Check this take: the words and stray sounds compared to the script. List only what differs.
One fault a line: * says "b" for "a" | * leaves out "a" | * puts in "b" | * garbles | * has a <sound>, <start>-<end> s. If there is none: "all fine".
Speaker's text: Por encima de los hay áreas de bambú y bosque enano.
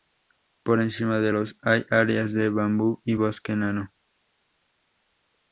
all fine